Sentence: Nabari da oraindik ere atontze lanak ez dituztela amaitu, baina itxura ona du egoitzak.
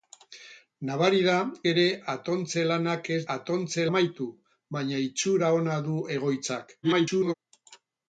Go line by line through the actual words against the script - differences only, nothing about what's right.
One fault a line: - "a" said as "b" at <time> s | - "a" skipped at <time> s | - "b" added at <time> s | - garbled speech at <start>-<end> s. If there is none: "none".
- "oraindik" skipped at 1.3 s
- "dituztela" said as "atontze" at 3.3 s
- garbled speech at 6.8-7.3 s